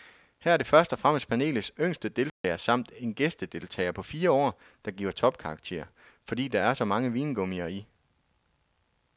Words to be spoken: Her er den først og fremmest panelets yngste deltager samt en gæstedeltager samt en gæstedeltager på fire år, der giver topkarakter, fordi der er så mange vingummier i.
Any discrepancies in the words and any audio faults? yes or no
yes